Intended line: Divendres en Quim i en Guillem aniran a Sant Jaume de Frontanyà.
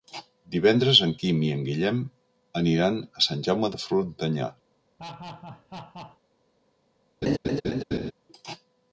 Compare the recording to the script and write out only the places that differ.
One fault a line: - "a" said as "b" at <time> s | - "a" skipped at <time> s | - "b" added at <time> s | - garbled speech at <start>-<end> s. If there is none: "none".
none